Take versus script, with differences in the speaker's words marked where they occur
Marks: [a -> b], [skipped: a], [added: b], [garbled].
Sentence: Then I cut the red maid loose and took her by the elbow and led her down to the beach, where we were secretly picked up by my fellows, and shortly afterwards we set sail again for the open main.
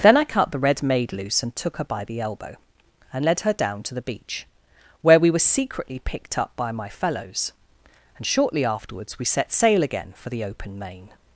Then I cut the red maid loose and took her by the elbow and led her down to the beach, where we were secretly picked up by my fellows, and shortly afterwards we set sail again for the open main.